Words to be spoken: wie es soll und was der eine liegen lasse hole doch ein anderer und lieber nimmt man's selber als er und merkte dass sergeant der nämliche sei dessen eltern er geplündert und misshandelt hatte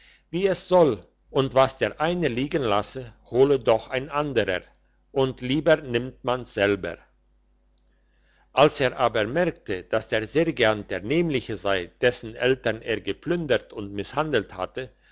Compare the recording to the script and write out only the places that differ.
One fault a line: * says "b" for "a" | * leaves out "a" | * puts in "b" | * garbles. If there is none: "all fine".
* says "aber" for "und"
* puts in "der"